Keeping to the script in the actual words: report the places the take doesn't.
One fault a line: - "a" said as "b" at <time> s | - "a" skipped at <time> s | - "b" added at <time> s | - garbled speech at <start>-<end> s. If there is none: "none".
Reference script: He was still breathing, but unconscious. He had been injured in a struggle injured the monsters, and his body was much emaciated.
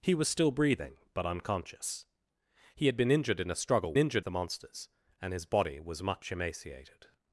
none